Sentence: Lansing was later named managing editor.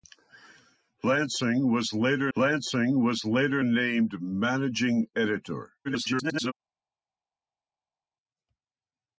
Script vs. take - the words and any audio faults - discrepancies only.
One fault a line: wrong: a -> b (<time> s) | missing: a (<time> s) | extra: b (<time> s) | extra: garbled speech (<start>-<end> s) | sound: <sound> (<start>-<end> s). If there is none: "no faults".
extra: lansing was later (2.4 s)
extra: garbled speech (5.8-6.5 s)